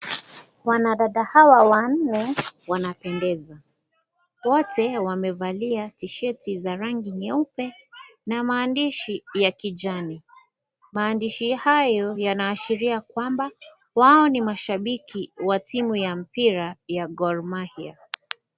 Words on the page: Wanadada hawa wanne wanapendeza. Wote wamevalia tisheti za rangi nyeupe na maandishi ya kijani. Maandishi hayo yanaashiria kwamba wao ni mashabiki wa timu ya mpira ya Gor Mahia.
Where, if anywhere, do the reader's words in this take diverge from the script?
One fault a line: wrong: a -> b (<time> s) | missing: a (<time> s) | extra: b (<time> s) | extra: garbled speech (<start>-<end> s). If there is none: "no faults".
no faults